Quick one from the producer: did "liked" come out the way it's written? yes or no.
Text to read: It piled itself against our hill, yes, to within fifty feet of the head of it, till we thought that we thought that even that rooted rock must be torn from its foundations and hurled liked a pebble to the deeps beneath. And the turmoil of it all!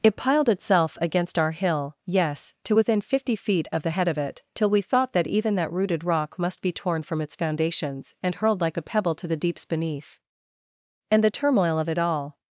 no